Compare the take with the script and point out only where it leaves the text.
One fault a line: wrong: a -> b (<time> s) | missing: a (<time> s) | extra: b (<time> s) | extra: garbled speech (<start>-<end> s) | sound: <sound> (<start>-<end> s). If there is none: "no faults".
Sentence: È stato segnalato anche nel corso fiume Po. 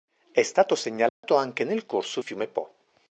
sound: dropout (1.1-1.2 s)